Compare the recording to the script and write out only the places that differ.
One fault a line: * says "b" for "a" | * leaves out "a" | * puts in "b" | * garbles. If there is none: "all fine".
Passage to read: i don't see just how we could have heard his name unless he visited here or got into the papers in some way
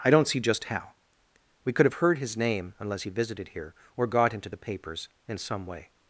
all fine